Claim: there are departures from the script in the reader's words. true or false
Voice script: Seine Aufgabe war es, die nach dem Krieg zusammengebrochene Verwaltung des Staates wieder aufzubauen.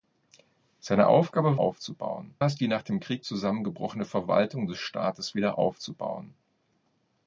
true